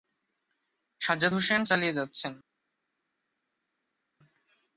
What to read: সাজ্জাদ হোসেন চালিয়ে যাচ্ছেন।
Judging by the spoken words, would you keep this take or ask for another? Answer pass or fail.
pass